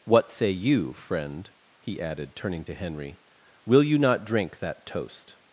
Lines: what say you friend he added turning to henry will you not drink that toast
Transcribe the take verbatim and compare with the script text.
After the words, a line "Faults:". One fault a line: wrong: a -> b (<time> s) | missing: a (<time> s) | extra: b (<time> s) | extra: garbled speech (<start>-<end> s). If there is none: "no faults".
what say you friend he added turning to henry will you not drink that toast
Faults:
no faults